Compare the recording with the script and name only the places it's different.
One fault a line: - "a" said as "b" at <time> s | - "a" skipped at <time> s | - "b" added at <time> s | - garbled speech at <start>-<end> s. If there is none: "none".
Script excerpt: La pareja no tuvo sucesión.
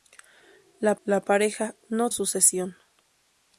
- "la" added at 1.0 s
- "tuvo" skipped at 2.1 s